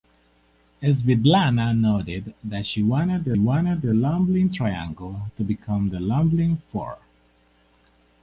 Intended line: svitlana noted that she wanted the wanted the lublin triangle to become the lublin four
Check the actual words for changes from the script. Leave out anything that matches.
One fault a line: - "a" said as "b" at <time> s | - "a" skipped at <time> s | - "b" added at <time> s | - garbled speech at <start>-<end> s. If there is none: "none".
none